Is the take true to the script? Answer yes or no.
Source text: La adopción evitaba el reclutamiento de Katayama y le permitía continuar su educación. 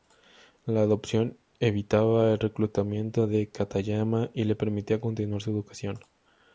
yes